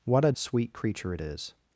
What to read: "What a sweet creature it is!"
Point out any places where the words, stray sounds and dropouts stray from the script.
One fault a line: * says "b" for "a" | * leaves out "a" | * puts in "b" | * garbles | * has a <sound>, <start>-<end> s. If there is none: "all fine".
all fine